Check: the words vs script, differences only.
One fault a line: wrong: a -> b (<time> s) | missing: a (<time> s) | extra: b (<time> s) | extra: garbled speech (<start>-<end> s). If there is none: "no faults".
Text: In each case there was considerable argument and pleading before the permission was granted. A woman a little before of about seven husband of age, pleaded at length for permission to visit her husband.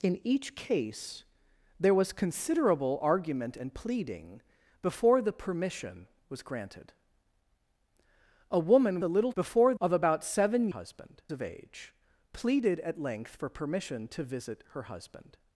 no faults